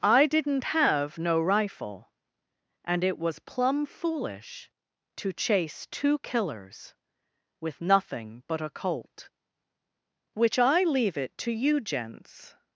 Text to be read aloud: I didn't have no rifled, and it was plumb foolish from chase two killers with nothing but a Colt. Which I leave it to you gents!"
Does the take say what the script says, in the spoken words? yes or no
no